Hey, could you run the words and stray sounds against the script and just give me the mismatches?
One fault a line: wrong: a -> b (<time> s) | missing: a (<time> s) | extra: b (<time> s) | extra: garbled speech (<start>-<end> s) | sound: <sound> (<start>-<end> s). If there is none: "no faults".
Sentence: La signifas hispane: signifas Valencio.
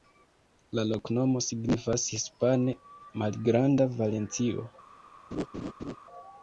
extra: loknomo (0.9 s)
wrong: signifas -> malgranda (3.2 s)
sound: laugh (5.3-6.0 s)